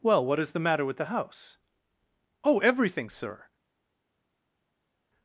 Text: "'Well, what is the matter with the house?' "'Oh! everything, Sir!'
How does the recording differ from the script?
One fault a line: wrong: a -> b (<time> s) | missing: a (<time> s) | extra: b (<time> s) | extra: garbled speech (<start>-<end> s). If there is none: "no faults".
no faults